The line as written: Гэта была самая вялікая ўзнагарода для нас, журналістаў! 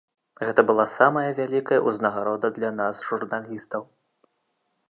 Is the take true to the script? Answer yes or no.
yes